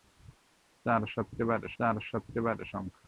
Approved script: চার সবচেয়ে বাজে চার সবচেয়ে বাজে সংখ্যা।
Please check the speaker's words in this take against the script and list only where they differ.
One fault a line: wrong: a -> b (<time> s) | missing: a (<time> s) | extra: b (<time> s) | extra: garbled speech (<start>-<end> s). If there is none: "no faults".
no faults